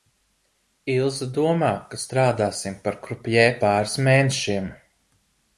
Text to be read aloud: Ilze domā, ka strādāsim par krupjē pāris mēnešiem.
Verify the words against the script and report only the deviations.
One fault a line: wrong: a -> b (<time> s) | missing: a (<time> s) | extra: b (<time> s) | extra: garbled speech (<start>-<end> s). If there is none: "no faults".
no faults